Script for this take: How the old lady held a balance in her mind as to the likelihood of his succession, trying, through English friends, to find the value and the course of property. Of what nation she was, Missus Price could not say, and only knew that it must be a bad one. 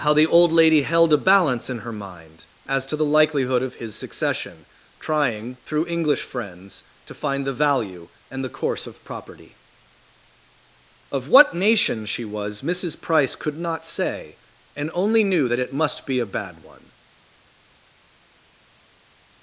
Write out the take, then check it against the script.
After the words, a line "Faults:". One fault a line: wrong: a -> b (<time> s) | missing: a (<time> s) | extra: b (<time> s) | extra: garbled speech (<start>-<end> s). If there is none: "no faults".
How the old lady held a balance in her mind as to the likelihood of his succession, trying, through English friends, to find the value and the course of property. Of what nation she was, Missus Price could not say, and only knew that it must be a bad one.
Faults:
no faults